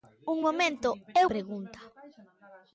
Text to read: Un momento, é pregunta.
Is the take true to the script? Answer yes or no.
yes